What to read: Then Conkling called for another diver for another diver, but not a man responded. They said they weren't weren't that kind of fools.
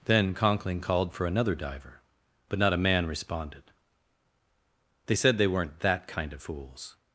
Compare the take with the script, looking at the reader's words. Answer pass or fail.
fail